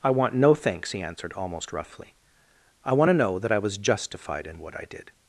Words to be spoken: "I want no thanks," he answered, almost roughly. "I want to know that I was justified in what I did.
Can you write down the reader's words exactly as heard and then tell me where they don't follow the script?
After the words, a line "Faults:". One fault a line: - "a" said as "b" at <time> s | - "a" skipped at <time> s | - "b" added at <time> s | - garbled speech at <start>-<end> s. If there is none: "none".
"I want no thanks," he answered, almost roughly. "I want to know that I was justified in what I did.
Faults:
none